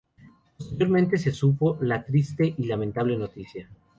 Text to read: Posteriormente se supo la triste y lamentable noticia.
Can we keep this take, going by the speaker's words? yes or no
yes